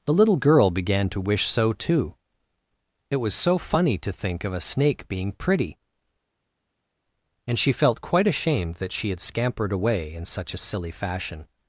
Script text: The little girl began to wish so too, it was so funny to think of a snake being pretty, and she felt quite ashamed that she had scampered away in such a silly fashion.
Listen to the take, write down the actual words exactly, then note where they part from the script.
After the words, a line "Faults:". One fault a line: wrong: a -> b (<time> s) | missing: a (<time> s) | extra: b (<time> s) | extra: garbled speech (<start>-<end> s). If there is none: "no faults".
The little girl began to wish so too, it was so funny to think of a snake being pretty, and she felt quite ashamed that she had scampered away in such a silly fashion.
Faults:
no faults